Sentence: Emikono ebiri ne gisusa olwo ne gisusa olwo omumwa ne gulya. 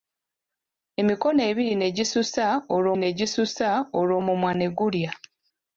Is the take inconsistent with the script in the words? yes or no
no